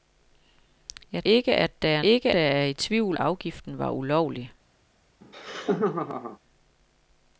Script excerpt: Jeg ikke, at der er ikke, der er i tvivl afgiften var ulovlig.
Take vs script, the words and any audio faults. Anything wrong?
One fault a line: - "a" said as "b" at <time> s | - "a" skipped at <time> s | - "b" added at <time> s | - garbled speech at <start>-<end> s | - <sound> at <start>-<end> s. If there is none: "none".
- laugh at 5.2-6.4 s